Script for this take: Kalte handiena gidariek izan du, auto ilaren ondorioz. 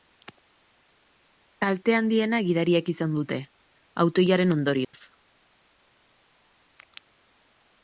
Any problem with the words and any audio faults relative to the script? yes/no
yes